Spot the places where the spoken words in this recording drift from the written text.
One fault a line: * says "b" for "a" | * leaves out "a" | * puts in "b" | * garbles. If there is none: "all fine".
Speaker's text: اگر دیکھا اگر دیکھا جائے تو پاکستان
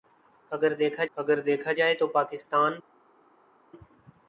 all fine